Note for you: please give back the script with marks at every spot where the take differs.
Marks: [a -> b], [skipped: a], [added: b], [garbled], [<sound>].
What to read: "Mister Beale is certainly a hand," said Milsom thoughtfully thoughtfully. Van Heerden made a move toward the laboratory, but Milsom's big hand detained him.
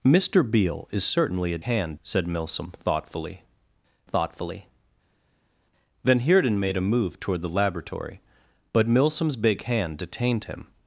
"Mister Beale is certainly a hand," said Milsom thoughtfully thoughtfully. Van Heerden made a move toward the laboratory, but Milsom's big hand detained him.